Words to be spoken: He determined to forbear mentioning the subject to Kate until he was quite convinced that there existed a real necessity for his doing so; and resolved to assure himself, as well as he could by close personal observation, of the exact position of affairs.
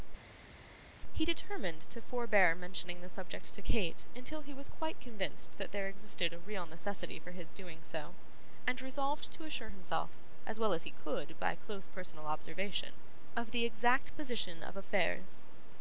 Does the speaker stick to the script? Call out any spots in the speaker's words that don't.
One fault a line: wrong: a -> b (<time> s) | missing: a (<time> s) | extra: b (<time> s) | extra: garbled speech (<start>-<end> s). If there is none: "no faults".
no faults